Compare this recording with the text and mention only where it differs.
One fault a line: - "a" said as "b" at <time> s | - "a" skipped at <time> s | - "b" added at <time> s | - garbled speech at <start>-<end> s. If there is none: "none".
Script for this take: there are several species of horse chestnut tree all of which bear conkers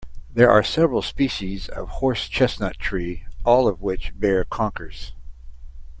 none